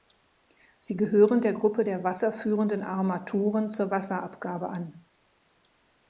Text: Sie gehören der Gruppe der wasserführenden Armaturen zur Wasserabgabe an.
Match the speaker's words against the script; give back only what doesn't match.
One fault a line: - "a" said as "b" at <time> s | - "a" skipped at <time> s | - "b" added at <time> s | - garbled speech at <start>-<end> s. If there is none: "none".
none